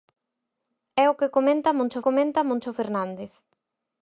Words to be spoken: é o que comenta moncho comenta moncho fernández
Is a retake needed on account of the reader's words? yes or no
no